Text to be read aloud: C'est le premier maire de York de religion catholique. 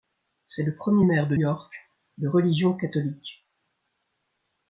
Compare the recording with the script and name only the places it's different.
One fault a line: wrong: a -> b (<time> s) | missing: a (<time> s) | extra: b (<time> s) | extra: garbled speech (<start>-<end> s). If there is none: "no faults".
no faults